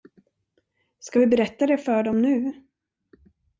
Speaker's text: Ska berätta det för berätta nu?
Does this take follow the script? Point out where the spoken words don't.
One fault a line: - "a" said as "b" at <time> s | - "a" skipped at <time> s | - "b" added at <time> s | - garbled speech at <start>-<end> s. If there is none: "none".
- "vi" added at 1.2 s
- "berätta" said as "dem" at 2.0 s